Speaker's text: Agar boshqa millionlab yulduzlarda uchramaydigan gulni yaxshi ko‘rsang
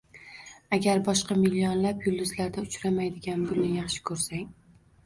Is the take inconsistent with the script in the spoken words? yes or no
no